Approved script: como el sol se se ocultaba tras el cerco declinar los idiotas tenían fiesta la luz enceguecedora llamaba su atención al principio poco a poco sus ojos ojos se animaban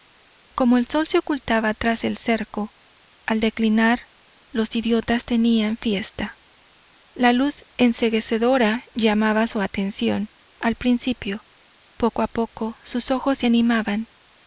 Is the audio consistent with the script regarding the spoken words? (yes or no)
no